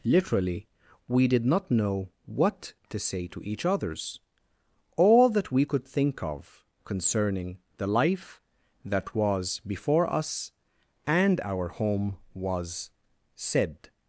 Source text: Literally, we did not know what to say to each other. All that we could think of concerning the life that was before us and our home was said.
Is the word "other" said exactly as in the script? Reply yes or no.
no